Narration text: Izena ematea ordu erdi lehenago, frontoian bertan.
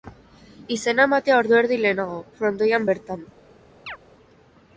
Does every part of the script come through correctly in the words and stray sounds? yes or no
no